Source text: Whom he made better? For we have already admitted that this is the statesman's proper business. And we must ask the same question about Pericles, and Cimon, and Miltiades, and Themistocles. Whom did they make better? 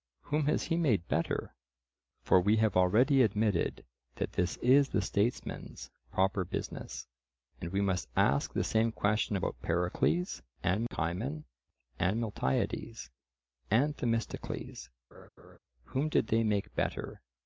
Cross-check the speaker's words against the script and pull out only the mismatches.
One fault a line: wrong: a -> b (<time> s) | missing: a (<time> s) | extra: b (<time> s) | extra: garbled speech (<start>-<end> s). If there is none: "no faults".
extra: has (0.5 s)